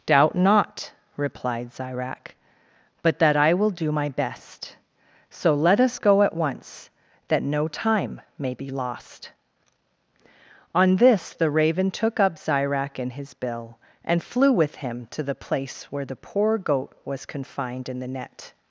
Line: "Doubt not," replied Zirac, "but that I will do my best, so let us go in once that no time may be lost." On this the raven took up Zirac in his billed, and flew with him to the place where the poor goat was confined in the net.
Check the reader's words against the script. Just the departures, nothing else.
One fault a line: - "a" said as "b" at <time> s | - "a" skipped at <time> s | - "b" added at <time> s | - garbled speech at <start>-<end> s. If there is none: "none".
- "in" said as "at" at 6.2 s
- "billed" said as "bill" at 13.3 s